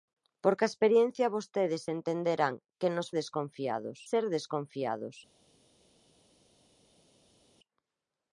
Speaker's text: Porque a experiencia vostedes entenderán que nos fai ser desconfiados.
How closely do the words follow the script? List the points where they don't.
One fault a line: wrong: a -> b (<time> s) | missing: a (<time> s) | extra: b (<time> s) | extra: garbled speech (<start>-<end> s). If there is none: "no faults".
wrong: fai -> desconfiados (3.2 s)